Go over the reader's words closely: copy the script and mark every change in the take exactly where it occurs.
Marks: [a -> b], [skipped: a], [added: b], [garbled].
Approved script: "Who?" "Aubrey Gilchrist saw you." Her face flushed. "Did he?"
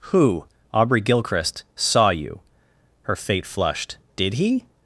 "Who?" "Aubrey Gilchrist saw you." Her [face -> fate] flushed. "Did he?"